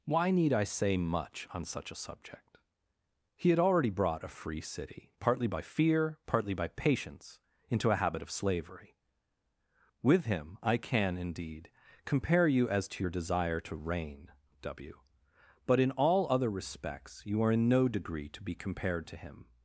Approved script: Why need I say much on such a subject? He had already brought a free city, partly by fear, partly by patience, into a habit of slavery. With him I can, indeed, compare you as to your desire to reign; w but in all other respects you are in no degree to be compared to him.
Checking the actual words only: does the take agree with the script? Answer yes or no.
yes